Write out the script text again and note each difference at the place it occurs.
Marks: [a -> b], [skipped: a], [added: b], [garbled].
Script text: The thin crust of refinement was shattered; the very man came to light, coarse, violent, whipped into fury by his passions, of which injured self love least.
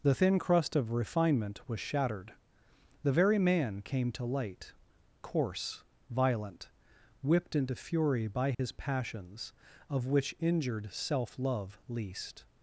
The thin crust of refinement was shattered; the very man came to light, coarse, violent, whipped into fury by his passions, of which injured self love least.